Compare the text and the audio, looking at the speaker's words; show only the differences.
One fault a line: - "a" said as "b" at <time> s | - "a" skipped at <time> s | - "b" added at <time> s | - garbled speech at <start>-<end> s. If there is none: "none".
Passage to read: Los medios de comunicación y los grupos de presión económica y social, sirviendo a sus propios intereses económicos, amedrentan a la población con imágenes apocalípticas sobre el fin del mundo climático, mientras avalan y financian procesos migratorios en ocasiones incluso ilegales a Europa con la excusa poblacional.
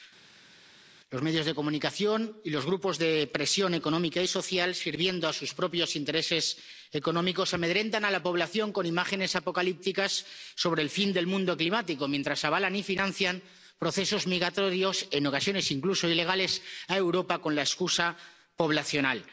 none